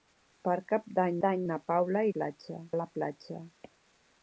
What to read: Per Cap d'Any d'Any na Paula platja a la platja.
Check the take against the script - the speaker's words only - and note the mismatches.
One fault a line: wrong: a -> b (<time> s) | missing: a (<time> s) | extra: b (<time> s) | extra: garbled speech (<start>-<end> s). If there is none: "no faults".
no faults